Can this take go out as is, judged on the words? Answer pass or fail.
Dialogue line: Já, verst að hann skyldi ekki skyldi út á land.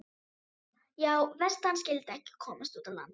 fail